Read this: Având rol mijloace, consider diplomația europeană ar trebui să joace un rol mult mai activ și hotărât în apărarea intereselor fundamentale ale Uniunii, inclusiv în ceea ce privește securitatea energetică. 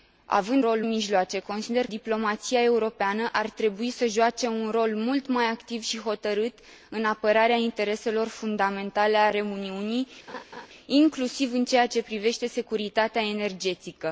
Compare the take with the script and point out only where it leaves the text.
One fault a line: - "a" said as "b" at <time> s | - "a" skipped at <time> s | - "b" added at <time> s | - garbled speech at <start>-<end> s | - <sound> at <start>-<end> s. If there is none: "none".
- laugh at 10.3-10.7 s